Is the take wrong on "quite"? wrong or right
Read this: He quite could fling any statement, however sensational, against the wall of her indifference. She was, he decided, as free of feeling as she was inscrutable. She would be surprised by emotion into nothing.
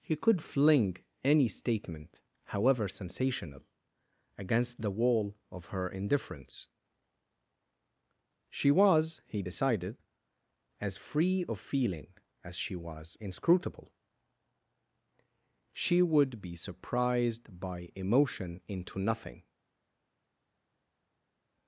wrong